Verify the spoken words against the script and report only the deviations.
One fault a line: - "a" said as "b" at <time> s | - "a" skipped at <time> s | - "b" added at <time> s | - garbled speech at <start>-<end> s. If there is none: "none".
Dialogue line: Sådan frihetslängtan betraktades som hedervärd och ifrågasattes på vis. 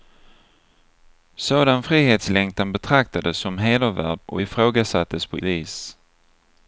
none